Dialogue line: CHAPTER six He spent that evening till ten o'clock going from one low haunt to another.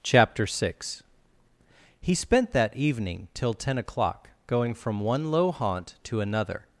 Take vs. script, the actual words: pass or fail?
pass